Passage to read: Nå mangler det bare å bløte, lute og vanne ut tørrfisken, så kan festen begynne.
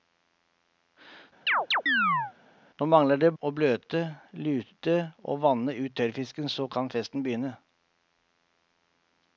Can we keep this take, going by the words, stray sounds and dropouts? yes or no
no